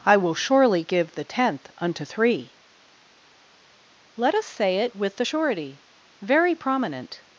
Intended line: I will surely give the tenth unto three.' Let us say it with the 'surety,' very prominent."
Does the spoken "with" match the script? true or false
true